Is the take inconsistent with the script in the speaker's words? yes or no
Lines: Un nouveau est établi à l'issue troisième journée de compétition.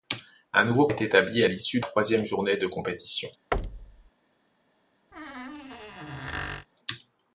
no